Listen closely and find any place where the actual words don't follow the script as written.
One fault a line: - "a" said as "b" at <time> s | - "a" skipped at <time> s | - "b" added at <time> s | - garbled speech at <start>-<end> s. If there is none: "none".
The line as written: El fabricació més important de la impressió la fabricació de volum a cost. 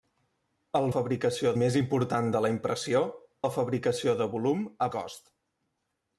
none